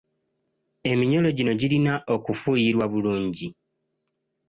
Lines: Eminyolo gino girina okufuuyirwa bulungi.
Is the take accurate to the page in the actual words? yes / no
yes